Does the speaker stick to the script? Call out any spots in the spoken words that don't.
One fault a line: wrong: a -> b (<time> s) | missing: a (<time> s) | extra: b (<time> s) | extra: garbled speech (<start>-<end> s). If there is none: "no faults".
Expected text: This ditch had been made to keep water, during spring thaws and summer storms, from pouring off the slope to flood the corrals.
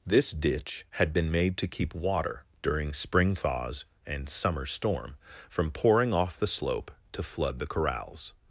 wrong: storms -> storm (4.7 s)